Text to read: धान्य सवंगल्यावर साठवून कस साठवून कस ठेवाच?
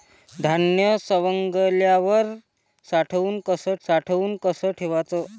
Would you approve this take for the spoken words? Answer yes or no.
yes